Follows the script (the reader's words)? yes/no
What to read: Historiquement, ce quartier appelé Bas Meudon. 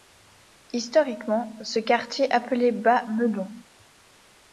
yes